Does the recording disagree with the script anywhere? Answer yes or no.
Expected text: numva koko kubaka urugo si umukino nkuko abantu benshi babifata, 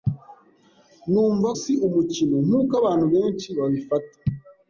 yes